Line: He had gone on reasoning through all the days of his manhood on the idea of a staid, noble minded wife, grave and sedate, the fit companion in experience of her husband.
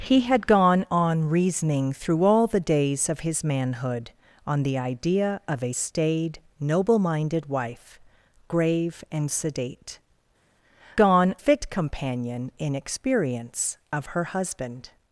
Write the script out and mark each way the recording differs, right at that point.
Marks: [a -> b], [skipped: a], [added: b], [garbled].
He had gone on reasoning through all the days of his manhood on the idea of a staid, noble minded wife, grave and sedate, [the -> gone] fit companion in experience of her husband.